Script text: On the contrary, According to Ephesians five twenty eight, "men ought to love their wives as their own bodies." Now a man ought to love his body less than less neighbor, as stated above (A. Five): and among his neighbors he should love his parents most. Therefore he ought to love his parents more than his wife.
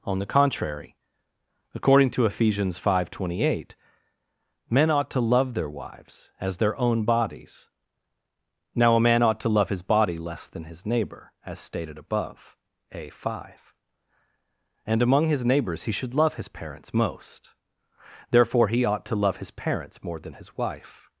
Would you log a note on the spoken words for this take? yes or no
yes